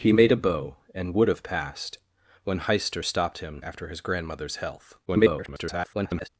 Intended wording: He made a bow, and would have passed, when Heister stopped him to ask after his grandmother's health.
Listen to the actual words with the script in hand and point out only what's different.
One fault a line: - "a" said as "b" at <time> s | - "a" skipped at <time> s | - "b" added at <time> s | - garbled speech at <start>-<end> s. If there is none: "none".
- "to ask" skipped at 3.6 s
- garbled speech at 5.1-6.3 s